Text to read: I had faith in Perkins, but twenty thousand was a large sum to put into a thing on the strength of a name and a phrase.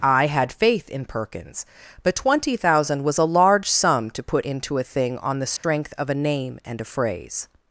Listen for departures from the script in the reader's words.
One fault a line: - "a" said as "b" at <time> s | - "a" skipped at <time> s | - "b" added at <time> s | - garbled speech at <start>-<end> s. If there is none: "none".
none